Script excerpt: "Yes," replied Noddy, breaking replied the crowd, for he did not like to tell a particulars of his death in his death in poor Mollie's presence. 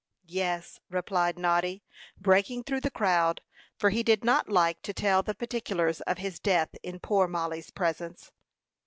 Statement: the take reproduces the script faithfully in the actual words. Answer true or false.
false